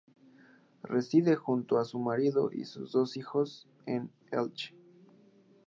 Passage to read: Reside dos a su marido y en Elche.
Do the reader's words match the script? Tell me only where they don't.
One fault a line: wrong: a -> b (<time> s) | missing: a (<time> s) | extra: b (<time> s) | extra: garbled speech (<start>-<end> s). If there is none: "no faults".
wrong: dos -> junto (1.4 s)
extra: sus dos hijos (2.6 s)